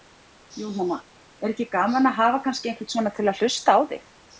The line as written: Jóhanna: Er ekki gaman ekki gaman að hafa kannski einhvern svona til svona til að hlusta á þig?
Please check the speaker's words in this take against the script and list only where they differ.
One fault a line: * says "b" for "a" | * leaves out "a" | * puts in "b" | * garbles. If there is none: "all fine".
* leaves out "ekki gaman"
* leaves out "svona til"